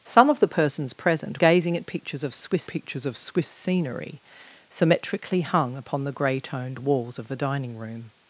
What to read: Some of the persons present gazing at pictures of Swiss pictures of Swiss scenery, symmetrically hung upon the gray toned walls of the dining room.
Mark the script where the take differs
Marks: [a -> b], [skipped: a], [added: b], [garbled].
Some of the persons present gazing at pictures of Swiss pictures of Swiss scenery, symmetrically hung upon the gray toned walls of the dining room.